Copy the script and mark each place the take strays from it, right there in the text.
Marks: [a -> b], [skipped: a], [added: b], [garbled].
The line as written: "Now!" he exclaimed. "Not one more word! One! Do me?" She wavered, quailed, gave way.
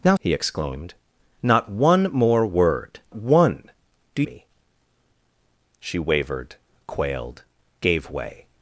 "Now!" he exclaimed. "Not one more word! One! Do me?" She wavered, quailed, gave way.